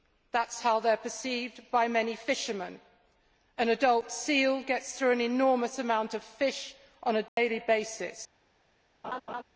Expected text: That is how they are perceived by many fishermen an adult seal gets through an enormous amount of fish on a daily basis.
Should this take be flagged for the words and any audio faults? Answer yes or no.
yes